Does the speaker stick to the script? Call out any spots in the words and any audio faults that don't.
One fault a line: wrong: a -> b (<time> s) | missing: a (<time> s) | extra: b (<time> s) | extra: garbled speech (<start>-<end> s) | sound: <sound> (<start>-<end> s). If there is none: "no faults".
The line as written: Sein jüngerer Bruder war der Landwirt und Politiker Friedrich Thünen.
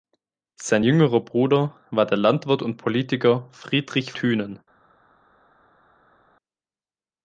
no faults